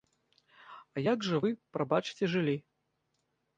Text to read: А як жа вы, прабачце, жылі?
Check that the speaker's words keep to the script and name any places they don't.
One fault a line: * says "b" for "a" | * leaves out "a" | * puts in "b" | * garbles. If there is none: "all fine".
all fine